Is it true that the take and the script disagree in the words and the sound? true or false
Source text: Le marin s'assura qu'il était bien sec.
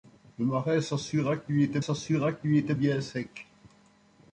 true